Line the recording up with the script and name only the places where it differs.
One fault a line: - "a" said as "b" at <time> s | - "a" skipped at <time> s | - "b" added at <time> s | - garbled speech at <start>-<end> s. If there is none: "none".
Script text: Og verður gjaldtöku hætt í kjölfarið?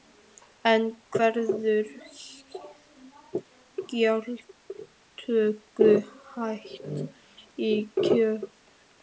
- "Og" said as "En" at 0.7 s